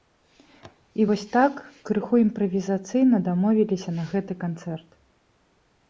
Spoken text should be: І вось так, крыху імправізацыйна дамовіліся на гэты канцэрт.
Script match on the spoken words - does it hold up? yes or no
yes